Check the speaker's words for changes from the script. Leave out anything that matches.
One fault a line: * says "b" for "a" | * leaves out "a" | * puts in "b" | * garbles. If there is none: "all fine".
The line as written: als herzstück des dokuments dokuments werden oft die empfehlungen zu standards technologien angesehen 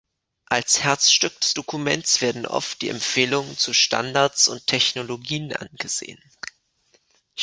* leaves out "dokuments"
* puts in "und"